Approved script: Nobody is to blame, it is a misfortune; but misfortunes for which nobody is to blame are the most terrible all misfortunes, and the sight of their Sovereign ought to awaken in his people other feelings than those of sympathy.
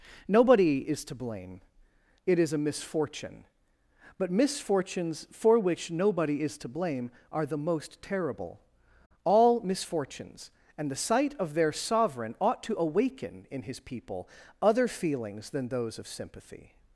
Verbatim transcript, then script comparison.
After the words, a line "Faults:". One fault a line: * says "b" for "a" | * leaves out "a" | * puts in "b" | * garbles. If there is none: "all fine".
Nobody is to blame, it is a misfortune; but misfortunes for which nobody is to blame are the most terrible all misfortunes, and the sight of their Sovereign ought to awaken in his people other feelings than those of sympathy.
Faults:
all fine